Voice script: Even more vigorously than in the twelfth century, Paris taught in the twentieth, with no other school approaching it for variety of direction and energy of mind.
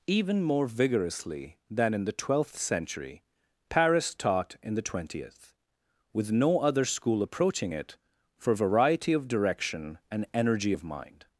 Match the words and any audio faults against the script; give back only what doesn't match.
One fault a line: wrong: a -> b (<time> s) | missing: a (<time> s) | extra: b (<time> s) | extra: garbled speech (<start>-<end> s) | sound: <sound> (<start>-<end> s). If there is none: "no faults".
no faults